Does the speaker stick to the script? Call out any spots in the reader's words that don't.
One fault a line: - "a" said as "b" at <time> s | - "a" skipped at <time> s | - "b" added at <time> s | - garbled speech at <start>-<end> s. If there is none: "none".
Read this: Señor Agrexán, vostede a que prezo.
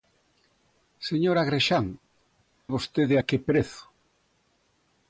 none